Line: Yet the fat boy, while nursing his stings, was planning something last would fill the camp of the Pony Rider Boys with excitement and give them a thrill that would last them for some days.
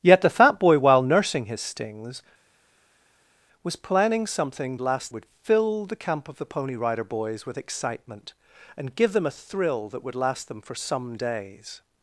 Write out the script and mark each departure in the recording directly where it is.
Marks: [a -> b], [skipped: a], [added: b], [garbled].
Yet the fat boy, while nursing his stings, was planning something last would fill the camp of the Pony Rider Boys with excitement and give them a thrill that would last them for some days.